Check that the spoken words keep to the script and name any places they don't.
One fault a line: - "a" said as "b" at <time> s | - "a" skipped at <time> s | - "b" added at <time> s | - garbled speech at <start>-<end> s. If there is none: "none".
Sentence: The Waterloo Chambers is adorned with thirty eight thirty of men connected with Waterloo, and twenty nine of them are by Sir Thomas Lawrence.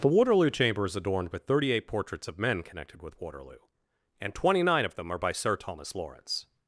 - "Chambers" said as "Chamber" at 0.5 s
- "thirty" said as "portraits" at 1.9 s